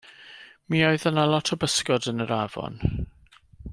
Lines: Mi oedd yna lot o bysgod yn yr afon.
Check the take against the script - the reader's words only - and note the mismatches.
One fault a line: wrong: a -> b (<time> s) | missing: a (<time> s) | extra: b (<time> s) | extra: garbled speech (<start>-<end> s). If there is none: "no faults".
no faults